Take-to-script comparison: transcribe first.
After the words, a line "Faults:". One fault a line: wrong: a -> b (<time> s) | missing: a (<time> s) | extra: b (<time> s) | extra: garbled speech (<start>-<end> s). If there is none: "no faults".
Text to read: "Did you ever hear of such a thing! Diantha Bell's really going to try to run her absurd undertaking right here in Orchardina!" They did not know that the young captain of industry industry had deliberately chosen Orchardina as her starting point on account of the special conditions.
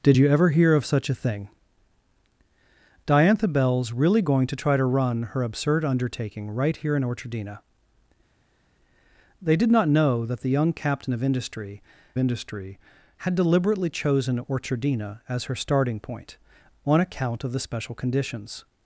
"Did you ever hear of such a thing! Diantha Bell's really going to try to run her absurd undertaking right here in Orchardina!" They did not know that the young captain of industry industry had deliberately chosen Orchardina as her starting point on account of the special conditions.
Faults:
no faults